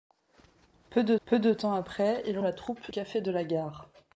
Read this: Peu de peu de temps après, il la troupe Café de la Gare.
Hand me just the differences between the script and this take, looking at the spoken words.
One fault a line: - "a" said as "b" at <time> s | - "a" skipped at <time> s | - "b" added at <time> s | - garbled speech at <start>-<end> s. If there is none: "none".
none